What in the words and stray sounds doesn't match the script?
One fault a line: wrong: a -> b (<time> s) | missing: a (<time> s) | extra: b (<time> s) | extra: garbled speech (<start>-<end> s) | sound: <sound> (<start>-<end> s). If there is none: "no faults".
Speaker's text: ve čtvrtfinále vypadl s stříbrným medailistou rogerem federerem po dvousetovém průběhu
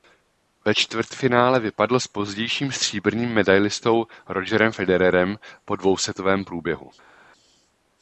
extra: pozdějším (2.1 s)